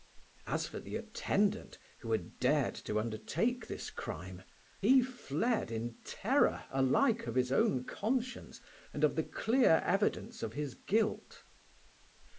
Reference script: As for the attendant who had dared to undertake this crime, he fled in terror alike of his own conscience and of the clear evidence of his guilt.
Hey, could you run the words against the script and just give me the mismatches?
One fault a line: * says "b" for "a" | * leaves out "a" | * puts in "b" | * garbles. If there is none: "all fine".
all fine